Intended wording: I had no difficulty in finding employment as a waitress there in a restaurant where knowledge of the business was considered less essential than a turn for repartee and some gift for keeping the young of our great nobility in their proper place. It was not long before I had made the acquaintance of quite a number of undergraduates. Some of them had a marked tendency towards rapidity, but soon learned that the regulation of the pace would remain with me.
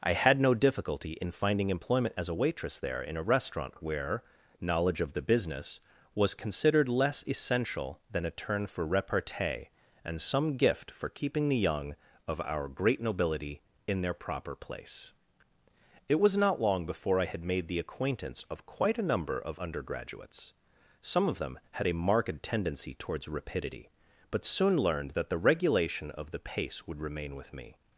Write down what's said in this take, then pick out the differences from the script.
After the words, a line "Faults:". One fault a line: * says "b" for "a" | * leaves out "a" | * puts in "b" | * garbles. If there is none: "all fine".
I had no difficulty in finding employment as a waitress there in a restaurant where knowledge of the business was considered less essential than a turn for repartee and some gift for keeping the young of our great nobility in their proper place. It was not long before I had made the acquaintance of quite a number of undergraduates. Some of them had a marked tendency towards rapidity, but soon learned that the regulation of the pace would remain with me.
Faults:
all fine